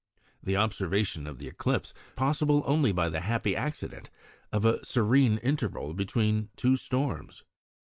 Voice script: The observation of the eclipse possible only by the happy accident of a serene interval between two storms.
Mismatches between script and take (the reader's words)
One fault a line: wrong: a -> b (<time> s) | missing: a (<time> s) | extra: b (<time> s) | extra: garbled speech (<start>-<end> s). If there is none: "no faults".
no faults